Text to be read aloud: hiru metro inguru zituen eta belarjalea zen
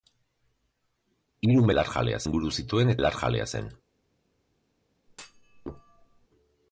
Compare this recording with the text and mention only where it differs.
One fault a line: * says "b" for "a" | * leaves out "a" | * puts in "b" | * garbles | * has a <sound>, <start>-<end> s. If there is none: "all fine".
* says "belarjalea" for "metro"
* leaves out "eta"
* has a thud, 5.1-6.3 s